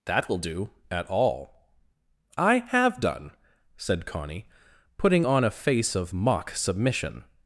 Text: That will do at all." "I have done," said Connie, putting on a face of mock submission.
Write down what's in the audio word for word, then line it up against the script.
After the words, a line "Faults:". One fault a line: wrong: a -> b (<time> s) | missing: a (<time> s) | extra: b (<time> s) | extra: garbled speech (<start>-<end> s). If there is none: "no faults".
That will do at all." "I have done," said Connie, putting on a face of mock submission.
Faults:
no faults